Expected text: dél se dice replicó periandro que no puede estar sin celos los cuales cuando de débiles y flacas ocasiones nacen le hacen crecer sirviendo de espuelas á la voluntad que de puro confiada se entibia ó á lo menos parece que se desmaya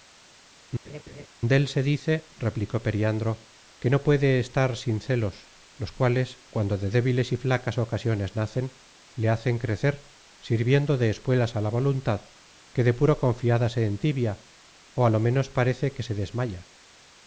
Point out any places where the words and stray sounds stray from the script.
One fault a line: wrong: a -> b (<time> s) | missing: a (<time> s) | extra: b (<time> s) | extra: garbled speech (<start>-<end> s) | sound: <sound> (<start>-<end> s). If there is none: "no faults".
sound: laugh (0.8-1.3 s)